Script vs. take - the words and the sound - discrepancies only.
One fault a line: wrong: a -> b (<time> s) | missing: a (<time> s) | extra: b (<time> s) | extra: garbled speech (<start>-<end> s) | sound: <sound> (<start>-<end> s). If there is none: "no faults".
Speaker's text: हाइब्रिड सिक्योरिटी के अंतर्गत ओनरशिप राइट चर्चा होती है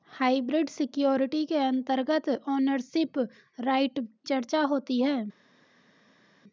no faults